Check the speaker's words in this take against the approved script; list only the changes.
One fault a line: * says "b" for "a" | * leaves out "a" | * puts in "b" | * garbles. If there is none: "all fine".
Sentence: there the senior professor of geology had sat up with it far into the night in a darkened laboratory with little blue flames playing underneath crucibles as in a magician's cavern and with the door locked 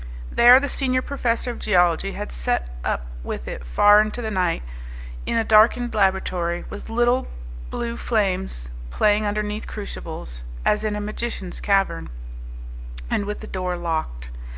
all fine